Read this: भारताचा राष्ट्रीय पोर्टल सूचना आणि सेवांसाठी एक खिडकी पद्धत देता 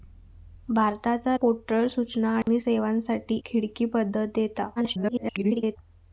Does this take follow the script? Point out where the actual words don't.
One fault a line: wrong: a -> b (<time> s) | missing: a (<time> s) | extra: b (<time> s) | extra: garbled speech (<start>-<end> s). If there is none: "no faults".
missing: राष्ट्रीय (1.4 s)
missing: एक (3.4 s)
extra: garbled speech (4.8-5.8 s)